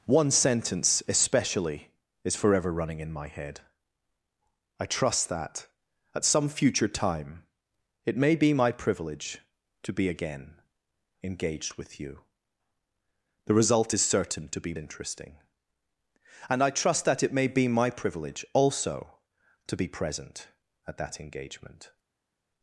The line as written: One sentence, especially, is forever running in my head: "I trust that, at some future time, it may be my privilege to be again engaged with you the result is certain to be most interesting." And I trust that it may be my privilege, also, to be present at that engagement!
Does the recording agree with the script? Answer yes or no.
no